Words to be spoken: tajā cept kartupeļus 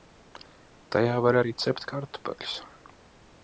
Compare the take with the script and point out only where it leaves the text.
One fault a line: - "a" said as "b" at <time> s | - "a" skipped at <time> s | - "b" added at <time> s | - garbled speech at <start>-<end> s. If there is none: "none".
- "var arī" added at 1.2 s